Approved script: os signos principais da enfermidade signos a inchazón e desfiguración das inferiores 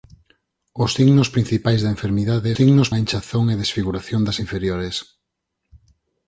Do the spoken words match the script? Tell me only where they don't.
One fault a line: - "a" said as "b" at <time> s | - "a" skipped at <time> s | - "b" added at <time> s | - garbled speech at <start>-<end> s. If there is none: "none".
none